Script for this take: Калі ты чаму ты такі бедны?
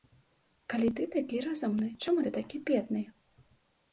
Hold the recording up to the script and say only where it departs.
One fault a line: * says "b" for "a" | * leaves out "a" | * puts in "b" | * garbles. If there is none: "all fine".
* puts in "такі разумны"